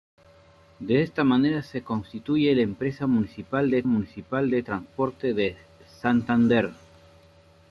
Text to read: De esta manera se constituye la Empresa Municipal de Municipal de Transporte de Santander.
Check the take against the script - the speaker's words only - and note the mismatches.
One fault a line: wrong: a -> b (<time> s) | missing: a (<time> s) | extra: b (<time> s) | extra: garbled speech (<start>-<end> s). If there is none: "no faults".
no faults